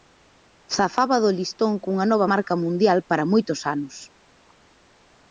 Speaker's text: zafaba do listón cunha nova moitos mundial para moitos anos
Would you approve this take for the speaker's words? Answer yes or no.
no